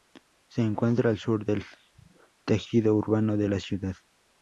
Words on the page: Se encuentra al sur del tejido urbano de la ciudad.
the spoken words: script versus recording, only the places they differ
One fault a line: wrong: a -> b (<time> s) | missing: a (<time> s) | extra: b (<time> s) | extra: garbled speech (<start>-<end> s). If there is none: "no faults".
no faults